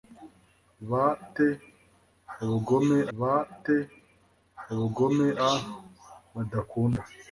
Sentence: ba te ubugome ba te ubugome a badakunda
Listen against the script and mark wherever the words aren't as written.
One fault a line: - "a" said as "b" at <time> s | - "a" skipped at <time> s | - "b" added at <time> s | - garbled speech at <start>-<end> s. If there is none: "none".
none